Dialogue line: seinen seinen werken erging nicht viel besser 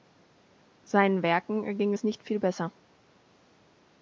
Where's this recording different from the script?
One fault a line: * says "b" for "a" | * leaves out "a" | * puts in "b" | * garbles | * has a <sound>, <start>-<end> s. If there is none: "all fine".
* leaves out "seinen"
* puts in "es"